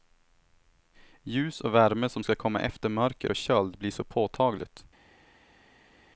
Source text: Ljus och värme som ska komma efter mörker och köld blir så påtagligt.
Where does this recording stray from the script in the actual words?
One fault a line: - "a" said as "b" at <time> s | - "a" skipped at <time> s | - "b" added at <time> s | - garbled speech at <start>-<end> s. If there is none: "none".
none